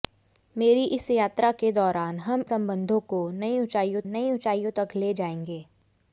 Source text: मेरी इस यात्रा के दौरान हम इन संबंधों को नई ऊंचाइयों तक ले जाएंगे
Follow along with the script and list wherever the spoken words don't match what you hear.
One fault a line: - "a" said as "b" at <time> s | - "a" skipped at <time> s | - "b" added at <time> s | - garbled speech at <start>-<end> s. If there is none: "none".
- "इन" skipped at 2.4 s
- "नई ऊंचाइयों" added at 4.1 s